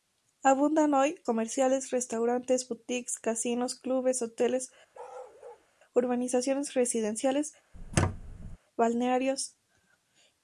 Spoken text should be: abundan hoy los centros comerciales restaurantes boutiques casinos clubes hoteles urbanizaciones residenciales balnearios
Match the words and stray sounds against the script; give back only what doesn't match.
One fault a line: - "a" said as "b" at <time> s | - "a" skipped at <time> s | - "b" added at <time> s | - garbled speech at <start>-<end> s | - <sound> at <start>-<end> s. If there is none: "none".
- "los centros" skipped at 1.2 s
- bark at 4.9-5.7 s
- squeak at 7.7-8.6 s